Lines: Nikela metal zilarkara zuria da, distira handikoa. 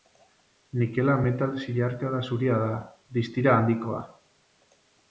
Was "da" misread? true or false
false